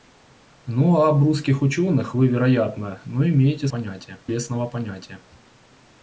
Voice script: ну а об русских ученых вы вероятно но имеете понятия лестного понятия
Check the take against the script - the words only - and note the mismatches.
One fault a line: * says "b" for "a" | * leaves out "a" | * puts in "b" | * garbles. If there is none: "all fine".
all fine